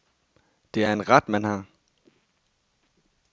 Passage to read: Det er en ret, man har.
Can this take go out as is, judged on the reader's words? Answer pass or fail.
pass